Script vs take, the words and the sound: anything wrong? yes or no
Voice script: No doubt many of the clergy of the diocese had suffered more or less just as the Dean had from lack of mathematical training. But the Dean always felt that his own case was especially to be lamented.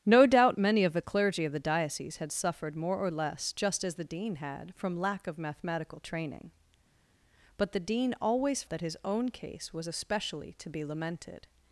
yes